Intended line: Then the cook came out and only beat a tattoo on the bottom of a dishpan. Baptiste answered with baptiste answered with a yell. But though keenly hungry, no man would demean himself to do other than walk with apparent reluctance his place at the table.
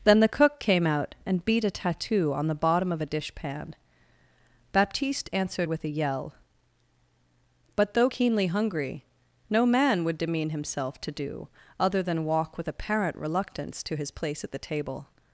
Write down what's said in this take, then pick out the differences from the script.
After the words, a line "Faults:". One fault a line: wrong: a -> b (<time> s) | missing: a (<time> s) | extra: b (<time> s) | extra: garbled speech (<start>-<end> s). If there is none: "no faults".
Then the cook came out and beat a tattoo on the bottom of a dishpan. Baptiste answered with a yell. But though keenly hungry, no man would demean himself to do other than walk with apparent reluctance to his place at the table.
Faults:
missing: only (1.4 s)
missing: baptiste answered with (5.8 s)
extra: to (13.8 s)